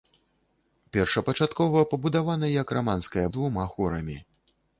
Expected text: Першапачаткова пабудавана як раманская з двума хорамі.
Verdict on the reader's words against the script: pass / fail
pass